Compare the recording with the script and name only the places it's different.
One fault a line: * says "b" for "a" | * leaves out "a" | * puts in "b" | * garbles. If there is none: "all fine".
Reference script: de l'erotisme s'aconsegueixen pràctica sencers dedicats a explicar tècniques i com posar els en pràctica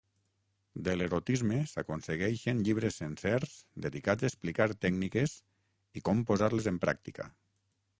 * says "llibres" for "pràctica"
* says "les" for "els"